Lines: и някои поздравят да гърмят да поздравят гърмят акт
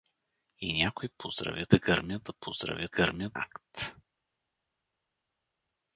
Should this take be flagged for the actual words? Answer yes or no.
no